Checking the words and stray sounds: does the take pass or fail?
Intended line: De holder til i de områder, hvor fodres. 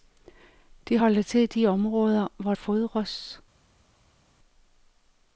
pass